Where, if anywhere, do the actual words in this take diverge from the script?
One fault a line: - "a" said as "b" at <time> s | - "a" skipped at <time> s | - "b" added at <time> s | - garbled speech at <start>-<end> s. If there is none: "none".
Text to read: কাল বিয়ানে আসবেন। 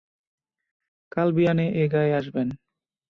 - "এ গাঁয়ে" added at 1.7 s